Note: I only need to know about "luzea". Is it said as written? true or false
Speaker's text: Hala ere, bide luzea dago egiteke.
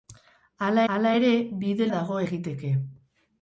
false